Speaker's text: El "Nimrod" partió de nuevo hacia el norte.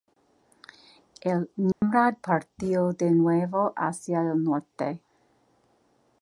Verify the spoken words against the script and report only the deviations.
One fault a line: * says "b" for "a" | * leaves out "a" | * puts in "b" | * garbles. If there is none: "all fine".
all fine